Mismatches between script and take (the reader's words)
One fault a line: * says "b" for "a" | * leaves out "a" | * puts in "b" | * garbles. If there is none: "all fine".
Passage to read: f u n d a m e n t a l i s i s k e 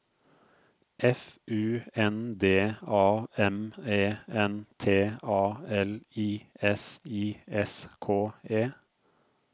all fine